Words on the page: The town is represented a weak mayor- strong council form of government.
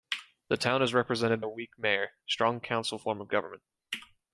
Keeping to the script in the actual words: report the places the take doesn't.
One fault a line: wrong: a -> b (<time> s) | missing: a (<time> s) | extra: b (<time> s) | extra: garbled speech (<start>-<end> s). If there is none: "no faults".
no faults